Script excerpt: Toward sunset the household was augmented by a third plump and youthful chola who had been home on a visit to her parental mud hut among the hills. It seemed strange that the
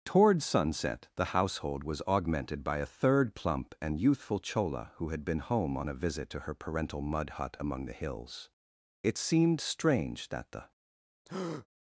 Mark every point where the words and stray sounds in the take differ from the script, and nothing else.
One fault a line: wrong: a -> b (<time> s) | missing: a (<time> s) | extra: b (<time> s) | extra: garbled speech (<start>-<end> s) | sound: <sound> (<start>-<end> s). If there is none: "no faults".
sound: breath (11.3-11.7 s)